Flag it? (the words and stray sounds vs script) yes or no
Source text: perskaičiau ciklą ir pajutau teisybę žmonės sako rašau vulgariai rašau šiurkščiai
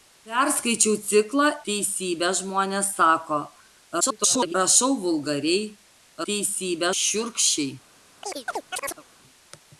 yes